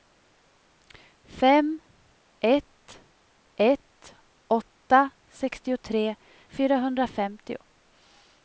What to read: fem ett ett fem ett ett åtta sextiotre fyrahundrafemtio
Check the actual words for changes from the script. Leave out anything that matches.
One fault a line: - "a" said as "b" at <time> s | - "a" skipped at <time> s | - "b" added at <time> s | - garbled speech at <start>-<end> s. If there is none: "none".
- "fem ett ett" skipped at 4.2 s